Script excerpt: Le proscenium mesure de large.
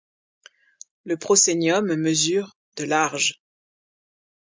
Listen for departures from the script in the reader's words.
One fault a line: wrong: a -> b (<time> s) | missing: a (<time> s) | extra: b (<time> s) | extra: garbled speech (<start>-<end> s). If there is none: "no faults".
no faults